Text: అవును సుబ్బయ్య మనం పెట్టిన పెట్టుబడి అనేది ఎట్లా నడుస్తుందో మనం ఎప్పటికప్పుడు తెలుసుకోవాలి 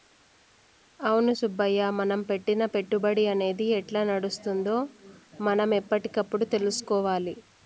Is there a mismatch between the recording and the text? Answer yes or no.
no